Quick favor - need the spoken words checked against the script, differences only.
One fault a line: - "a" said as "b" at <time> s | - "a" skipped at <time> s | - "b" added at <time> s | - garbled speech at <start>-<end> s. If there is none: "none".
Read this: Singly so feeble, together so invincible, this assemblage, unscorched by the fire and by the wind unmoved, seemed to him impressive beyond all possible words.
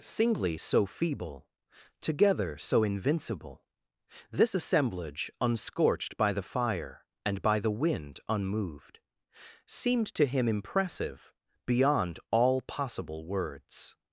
none